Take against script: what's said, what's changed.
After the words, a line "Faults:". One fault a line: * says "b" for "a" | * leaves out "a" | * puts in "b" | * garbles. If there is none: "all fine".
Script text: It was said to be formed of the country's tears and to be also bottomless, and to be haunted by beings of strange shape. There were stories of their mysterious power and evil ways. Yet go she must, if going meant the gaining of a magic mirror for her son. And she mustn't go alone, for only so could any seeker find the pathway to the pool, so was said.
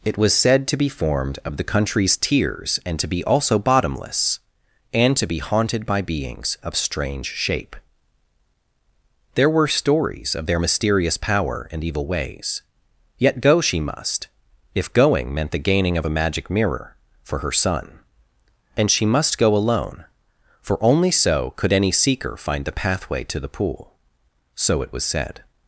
It was said to be formed of the country's tears and to be also bottomless, and to be haunted by beings of strange shape. There were stories of their mysterious power and evil ways. Yet go she must, if going meant the gaining of a magic mirror for her son. And she must go alone, for only so could any seeker find the pathway to the pool, so it was said.
Faults:
* says "must" for "mustn't"
* puts in "it"